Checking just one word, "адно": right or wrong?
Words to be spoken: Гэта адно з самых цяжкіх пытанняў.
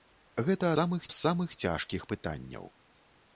wrong